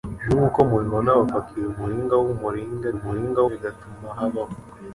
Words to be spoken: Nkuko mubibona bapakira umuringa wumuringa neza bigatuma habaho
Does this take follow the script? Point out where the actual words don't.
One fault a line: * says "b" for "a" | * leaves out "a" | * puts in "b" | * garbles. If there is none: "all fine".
* says "umuringa" for "neza"